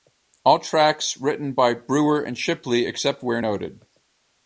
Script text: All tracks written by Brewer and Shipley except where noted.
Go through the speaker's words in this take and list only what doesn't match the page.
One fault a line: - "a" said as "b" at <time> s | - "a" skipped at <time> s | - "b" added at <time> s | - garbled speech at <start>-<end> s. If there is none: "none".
none